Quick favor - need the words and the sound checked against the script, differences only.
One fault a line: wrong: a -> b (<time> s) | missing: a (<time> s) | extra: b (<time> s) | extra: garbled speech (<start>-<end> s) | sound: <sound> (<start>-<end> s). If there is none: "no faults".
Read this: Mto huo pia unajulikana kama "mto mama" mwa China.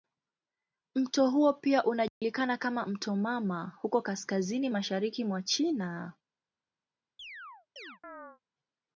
sound: dropout (2.1-2.2 s)
extra: huko kaskazini mashariki (3.8 s)
sound: chirp (7.2-8.4 s)